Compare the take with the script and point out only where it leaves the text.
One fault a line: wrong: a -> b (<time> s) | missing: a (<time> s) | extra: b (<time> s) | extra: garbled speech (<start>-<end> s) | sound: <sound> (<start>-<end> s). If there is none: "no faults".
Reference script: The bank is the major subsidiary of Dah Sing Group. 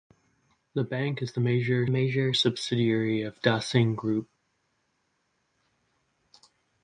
extra: major (1.9 s)